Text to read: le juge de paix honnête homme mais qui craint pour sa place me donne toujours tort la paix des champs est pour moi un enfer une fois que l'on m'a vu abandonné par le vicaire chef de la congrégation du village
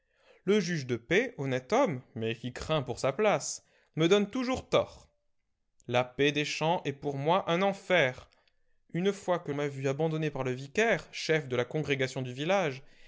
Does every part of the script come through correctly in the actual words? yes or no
no